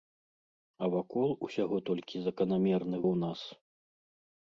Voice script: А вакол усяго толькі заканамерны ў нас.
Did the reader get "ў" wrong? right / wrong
right